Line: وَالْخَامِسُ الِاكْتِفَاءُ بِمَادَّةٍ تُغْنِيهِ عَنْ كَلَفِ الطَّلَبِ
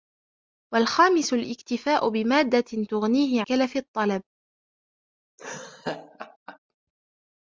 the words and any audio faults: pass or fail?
fail